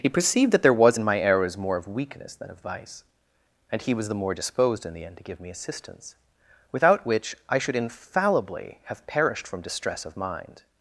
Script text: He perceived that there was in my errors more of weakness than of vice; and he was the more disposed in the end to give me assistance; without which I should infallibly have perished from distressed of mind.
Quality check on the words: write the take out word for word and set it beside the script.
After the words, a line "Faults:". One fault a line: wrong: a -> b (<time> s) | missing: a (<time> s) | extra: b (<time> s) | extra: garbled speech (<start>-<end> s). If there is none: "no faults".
He perceived that there was in my errors more of weakness than of vice; and he was the more disposed in the end to give me assistance; without which I should infallibly have perished from distress of mind.
Faults:
wrong: distressed -> distress (9.6 s)